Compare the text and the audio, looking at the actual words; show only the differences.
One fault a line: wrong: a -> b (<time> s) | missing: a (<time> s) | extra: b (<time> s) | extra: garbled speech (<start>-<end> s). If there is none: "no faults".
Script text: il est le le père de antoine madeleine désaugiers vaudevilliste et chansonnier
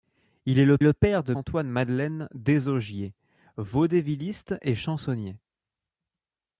no faults